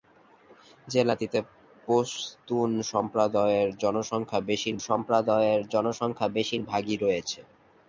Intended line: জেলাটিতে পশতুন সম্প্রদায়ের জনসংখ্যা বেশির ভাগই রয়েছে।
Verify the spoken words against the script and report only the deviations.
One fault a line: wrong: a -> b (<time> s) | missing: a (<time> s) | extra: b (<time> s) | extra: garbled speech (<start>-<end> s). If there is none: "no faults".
extra: সম্প্রদায়ের জনসংখ্যা বেশির (4.9 s)